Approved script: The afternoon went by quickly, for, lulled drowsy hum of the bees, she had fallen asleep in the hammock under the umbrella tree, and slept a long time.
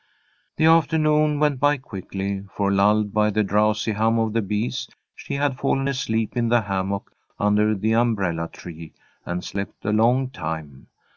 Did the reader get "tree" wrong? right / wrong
right